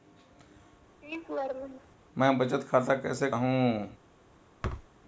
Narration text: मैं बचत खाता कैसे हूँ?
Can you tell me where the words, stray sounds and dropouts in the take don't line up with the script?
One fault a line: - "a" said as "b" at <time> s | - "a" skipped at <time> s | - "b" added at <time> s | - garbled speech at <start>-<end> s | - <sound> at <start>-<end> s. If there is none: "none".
- laugh at 1.0-2.0 s
- thud at 4.6-4.9 s